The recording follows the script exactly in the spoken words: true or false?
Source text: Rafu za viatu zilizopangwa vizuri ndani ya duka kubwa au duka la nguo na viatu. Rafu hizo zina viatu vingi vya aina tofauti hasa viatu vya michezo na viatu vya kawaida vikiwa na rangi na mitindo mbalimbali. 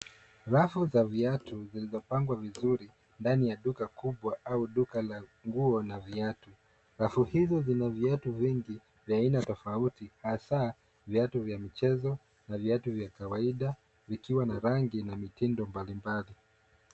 true